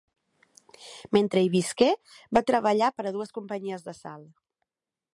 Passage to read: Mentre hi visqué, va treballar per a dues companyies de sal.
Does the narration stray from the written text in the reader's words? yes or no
no